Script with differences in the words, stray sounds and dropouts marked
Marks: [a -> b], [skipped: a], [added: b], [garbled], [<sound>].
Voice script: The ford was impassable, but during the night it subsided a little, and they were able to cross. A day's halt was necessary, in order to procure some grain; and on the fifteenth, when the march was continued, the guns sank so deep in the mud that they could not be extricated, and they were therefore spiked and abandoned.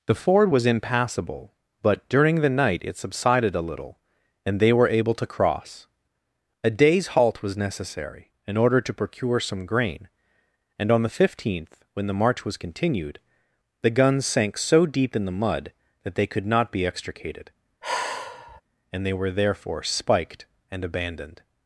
The ford was impassable, but during the night it subsided a little, and they were able to cross. A day's halt was necessary, in order to procure some grain; and on the fifteenth, when the march was continued, the guns sank so deep in the mud that they could not be extricated, [sigh] and they were therefore spiked and abandoned.